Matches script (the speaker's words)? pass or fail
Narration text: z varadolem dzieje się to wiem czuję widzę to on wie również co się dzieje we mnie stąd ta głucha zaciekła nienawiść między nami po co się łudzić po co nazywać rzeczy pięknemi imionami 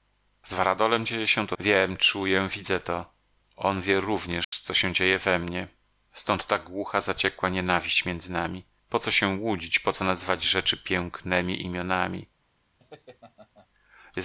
pass